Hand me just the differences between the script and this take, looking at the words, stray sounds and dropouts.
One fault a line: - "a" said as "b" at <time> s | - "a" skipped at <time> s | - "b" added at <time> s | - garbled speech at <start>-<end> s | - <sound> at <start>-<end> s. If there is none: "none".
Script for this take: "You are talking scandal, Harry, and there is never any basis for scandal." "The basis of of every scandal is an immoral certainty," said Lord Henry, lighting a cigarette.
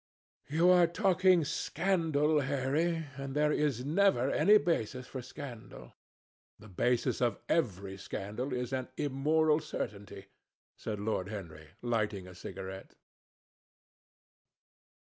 - "of" skipped at 7.4 s